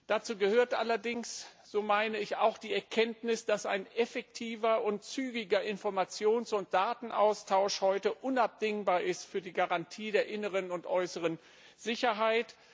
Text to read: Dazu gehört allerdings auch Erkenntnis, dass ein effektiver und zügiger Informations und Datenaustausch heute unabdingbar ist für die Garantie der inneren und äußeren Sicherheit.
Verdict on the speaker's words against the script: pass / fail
fail